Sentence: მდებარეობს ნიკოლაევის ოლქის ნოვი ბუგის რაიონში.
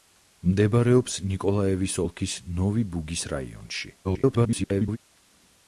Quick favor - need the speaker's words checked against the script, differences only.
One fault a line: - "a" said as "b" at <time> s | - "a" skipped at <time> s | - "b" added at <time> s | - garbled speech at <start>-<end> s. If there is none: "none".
- garbled speech at 4.0-5.0 s